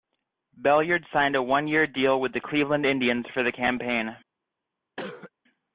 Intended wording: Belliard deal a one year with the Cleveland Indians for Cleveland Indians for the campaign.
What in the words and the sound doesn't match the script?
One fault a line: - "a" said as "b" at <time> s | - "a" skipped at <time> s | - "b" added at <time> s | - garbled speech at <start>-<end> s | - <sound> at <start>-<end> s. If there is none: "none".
- "deal" said as "signed" at 1.1 s
- "deal" added at 1.9 s
- "Cleveland Indians for" skipped at 3.4 s
- cough at 5.0-5.3 s